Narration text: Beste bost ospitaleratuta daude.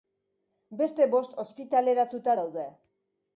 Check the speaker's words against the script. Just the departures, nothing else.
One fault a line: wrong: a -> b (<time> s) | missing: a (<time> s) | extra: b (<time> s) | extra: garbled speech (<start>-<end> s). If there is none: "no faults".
no faults